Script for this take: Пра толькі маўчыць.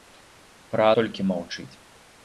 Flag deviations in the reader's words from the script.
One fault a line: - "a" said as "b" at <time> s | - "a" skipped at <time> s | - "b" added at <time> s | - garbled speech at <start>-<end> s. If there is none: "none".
none